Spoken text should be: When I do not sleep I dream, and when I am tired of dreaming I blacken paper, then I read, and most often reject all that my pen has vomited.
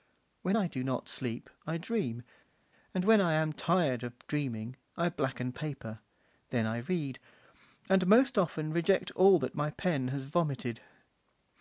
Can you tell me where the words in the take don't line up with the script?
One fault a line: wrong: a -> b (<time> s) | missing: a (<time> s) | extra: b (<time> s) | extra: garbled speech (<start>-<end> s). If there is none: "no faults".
no faults